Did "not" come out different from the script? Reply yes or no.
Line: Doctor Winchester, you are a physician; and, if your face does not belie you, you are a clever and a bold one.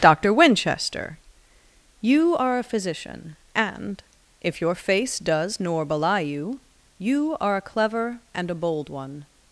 yes